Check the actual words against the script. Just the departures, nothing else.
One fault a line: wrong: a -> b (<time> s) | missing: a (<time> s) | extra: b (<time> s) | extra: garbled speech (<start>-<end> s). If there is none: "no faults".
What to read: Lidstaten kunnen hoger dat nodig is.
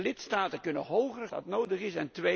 no faults